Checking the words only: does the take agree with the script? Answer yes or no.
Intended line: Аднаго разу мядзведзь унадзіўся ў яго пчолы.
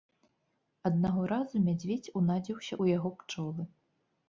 yes